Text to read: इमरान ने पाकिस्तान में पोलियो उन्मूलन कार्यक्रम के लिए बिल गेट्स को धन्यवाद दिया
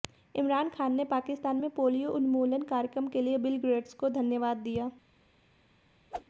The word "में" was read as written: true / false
true